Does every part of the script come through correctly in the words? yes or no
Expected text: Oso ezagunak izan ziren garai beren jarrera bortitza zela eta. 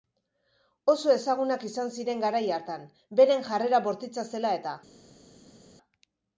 no